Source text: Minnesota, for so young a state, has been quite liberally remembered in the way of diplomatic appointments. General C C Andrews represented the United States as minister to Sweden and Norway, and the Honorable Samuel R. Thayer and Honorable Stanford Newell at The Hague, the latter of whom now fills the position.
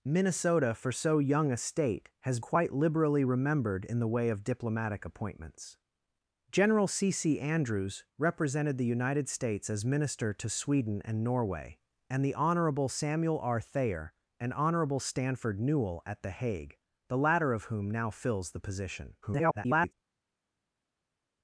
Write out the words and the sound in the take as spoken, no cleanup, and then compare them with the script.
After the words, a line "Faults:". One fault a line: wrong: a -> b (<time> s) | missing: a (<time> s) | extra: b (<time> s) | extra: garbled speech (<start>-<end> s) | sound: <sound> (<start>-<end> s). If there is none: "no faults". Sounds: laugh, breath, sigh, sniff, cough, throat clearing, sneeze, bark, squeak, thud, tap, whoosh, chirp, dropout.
Minnesota, for so young a state, has quite liberally remembered in the way of diplomatic appointments. General C C Andrews represented the United States as minister to Sweden and Norway, and the Honorable Samuel R. Thayer and Honorable Stanford Newell at The Hague, the latter of whom now fills the position. [garbled]
Faults:
missing: been (2.4 s)
extra: garbled speech (19.2-19.9 s)